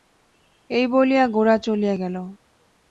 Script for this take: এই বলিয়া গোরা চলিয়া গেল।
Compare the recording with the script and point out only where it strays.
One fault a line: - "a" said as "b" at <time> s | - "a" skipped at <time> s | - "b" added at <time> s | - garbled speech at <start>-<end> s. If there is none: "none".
none